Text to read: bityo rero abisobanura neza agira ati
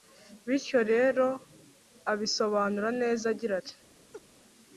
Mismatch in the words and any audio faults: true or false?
true